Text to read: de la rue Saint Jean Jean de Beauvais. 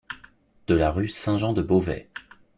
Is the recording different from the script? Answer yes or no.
yes